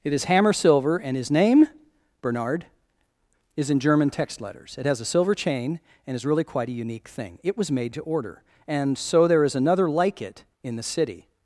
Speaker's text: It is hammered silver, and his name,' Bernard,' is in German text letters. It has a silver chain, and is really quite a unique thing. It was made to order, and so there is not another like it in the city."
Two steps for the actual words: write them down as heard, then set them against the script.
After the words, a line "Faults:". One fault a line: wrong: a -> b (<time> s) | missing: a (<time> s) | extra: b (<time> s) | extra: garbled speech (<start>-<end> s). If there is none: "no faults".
It is hammer silver, and his name,' Bernard,' is in German text letters. It has a silver chain, and is really quite a unique thing. It was made to order, and so there is another like it in the city."
Faults:
wrong: hammered -> hammer (0.2 s)
missing: not (9.6 s)